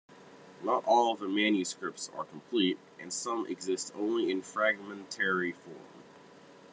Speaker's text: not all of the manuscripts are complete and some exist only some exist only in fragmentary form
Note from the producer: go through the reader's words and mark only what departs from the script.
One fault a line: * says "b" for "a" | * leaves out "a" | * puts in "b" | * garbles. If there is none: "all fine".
* leaves out "some exist only"